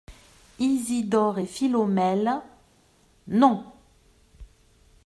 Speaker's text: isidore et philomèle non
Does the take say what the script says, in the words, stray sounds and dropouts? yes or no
yes